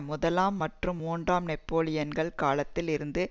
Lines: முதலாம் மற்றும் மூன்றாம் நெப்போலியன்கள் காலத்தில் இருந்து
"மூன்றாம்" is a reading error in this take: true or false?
false